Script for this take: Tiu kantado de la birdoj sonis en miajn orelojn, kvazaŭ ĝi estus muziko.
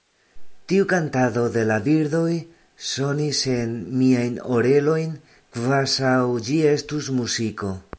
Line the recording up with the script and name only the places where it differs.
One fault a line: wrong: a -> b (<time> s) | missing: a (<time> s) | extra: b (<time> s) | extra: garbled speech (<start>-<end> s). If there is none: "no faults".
no faults